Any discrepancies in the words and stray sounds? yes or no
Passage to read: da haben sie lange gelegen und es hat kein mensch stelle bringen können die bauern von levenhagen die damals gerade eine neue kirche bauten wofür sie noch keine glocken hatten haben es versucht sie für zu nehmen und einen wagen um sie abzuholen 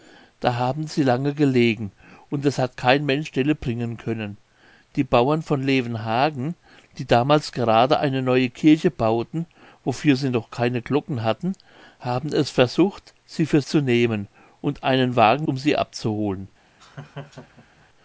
yes